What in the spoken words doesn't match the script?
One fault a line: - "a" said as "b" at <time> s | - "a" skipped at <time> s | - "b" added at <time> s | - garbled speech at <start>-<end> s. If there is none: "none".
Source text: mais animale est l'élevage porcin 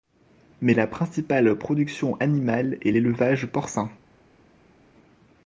- "la principale production" added at 0.7 s